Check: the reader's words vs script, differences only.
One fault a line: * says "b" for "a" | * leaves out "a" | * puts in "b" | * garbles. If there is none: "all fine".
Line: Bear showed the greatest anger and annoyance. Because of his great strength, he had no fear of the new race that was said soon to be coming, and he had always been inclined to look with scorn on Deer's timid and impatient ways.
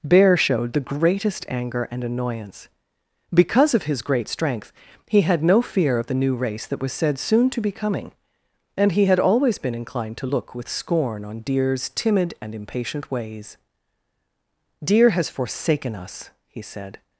* puts in "Deer has forsaken us he said"